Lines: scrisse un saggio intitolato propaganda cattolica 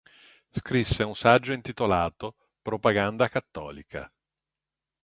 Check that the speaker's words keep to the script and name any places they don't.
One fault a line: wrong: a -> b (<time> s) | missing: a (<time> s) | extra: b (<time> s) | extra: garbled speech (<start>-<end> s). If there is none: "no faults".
no faults